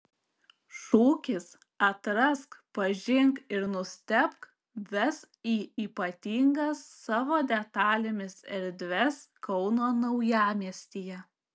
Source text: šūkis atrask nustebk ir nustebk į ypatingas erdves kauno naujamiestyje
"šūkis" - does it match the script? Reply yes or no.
yes